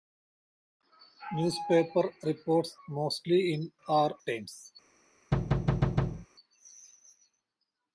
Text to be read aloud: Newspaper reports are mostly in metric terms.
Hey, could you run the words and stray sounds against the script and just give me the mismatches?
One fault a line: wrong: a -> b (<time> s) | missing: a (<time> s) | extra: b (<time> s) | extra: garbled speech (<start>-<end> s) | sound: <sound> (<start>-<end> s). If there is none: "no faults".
missing: are (2.8 s)
wrong: metric -> are (3.9 s)
sound: thud (5.3-6.3 s)